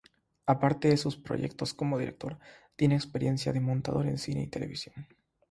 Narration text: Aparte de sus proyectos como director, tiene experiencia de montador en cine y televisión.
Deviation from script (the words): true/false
false